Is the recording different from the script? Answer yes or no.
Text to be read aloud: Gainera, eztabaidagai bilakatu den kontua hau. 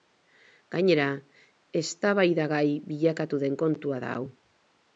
yes